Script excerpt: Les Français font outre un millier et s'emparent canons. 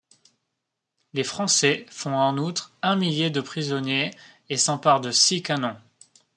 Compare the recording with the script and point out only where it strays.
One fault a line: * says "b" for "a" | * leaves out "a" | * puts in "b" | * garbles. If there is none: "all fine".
* puts in "en"
* puts in "de prisonniers"
* puts in "de six"